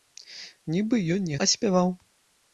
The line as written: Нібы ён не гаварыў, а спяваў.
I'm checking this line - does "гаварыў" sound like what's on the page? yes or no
no